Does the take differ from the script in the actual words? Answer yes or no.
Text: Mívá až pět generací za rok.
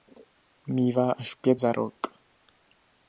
yes